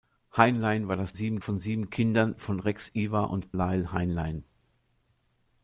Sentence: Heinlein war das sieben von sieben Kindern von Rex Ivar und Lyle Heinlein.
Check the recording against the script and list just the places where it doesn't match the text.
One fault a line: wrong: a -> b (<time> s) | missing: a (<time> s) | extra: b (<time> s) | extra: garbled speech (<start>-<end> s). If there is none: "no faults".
no faults